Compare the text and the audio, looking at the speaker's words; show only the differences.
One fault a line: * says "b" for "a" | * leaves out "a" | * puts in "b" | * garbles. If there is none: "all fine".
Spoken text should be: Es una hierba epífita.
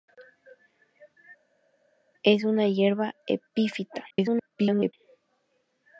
* garbles